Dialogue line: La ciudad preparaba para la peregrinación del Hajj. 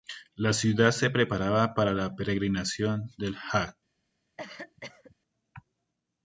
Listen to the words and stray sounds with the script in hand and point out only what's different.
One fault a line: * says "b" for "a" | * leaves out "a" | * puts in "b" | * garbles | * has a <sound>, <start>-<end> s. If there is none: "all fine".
* puts in "se"
* has a cough, 4.4-5.2 s